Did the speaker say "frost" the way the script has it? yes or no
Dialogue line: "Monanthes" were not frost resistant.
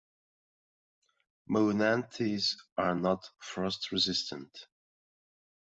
yes